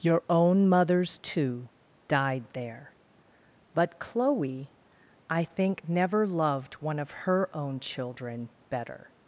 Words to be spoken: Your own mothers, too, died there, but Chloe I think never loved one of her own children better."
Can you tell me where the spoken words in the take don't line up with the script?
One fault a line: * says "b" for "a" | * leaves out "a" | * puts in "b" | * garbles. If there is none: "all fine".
all fine